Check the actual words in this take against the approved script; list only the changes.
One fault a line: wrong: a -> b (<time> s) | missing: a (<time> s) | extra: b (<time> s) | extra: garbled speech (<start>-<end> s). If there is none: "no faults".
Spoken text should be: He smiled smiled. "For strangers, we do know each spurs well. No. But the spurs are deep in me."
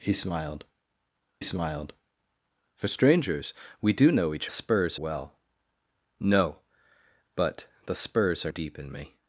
no faults